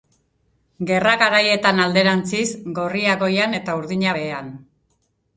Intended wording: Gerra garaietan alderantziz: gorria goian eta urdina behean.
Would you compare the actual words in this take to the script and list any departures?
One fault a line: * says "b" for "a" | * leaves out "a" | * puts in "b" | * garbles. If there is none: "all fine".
all fine